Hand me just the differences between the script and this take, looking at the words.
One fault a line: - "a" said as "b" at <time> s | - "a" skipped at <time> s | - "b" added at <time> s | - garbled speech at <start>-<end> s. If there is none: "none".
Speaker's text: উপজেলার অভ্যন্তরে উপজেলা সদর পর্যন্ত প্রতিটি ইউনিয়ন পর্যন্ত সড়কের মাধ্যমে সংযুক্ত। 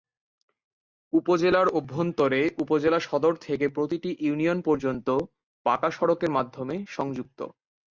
- "পর্যন্ত" said as "থেকে" at 3.5 s
- "পাকা" added at 5.7 s